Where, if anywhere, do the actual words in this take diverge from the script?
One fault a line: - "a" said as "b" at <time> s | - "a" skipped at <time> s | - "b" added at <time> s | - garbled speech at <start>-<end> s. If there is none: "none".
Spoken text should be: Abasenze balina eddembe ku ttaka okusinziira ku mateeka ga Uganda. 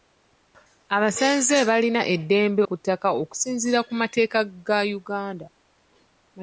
none